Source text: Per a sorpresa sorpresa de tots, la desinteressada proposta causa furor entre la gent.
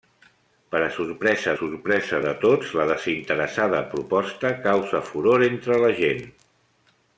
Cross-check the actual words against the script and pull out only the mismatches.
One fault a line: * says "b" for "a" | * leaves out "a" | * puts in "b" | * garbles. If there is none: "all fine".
all fine